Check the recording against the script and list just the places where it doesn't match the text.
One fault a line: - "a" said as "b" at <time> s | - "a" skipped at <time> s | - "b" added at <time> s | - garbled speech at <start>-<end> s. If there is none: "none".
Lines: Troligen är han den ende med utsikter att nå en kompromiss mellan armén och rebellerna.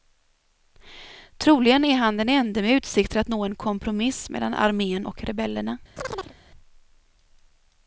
none